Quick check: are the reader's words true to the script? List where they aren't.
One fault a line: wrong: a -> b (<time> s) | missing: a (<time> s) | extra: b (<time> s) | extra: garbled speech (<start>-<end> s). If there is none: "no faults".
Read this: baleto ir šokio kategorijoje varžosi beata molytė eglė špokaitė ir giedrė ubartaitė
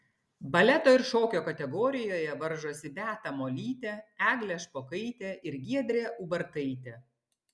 no faults